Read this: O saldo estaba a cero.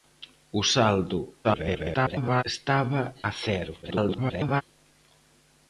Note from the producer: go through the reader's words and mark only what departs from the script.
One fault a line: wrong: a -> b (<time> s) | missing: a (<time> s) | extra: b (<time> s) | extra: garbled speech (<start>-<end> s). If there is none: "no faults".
extra: garbled speech (1.4-2.4 s)
extra: garbled speech (3.8-4.6 s)